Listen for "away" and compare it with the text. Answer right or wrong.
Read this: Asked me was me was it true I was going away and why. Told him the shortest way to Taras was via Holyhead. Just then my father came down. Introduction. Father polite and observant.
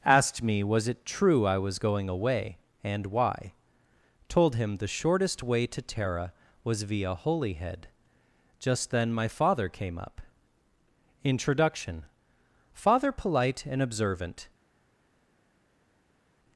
right